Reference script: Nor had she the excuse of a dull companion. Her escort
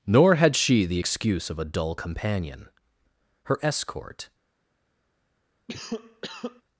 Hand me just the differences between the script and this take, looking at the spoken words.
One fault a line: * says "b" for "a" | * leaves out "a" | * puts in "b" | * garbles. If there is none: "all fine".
all fine